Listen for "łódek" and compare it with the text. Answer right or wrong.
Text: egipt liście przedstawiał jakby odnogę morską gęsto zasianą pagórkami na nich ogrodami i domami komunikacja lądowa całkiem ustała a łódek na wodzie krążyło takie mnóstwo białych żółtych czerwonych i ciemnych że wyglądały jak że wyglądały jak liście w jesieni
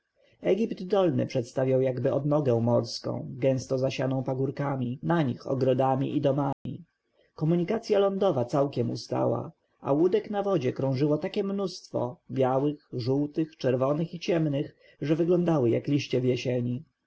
right